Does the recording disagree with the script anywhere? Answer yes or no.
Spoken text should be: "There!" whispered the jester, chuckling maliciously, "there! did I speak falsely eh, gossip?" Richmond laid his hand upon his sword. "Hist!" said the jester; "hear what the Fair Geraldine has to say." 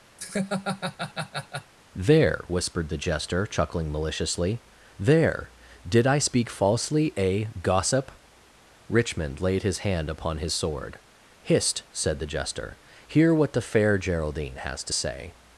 no